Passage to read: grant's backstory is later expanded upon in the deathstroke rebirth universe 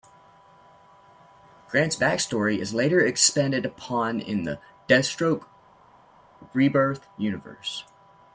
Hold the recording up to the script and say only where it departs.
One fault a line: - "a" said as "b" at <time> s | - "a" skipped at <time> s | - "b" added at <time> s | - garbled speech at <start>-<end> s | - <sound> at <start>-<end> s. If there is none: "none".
none